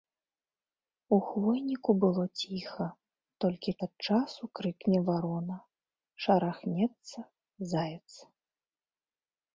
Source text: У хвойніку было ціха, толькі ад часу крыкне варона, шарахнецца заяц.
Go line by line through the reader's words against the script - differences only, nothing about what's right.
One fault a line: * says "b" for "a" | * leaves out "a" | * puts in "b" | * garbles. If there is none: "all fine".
all fine